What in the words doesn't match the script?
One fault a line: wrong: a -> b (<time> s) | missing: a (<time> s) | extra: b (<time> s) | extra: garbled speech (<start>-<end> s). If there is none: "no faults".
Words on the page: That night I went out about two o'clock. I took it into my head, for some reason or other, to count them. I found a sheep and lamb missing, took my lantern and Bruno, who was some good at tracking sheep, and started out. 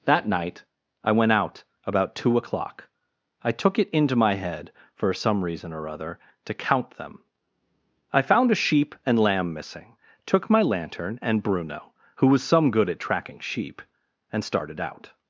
no faults